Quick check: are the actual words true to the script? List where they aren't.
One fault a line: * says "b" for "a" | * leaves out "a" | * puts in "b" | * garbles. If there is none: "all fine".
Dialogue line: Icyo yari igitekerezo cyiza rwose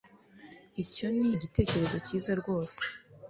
* says "ni" for "yari"